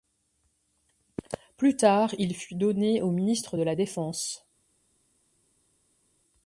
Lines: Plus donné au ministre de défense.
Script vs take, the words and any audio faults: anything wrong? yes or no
yes